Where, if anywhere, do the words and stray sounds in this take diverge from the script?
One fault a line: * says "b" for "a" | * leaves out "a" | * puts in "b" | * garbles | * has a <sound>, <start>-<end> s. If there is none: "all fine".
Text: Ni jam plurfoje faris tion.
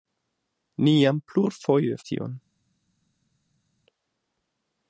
* leaves out "faris"